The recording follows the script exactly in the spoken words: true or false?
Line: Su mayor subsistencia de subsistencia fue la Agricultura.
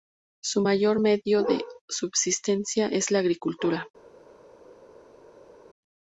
false